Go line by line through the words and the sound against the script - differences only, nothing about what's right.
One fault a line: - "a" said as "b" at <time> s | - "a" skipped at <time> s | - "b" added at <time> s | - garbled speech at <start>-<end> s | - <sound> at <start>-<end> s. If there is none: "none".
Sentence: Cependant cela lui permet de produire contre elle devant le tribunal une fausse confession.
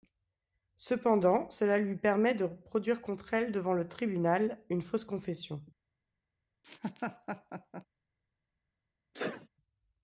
- laugh at 6.6-7.9 s
- sneeze at 9.1-9.5 s